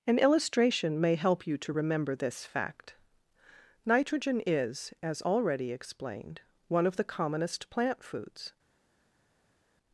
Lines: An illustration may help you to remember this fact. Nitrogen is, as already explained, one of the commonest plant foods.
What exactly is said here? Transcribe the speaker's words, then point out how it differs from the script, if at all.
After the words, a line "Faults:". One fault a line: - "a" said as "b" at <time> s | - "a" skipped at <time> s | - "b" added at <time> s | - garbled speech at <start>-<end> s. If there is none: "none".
An illustration may help you to remember this fact. Nitrogen is, as already explained, one of the commonest plant foods.
Faults:
none